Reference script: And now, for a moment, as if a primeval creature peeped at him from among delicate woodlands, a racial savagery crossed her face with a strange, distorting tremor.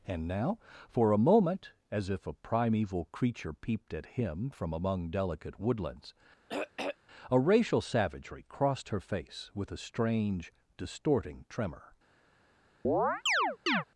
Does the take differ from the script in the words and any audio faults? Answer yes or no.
yes